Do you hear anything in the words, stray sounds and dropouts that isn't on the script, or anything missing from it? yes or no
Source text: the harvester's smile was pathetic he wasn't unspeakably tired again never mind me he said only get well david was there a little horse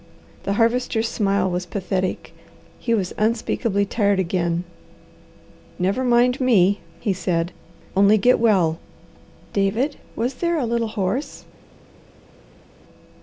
yes